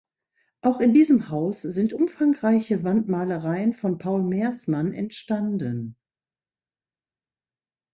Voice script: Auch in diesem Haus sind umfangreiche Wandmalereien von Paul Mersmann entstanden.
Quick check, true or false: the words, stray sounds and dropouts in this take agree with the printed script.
true